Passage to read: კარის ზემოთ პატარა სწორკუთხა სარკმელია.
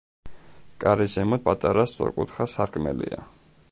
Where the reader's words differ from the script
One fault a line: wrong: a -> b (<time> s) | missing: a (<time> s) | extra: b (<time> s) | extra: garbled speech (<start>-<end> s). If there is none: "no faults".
no faults